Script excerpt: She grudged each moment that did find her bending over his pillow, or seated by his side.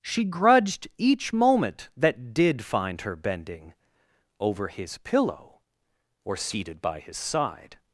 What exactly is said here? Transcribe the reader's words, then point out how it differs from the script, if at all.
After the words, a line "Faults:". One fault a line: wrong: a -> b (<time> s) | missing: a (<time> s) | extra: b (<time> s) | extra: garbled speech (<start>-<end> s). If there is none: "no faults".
She grudged each moment that did find her bending over his pillow, or seated by his side.
Faults:
no faults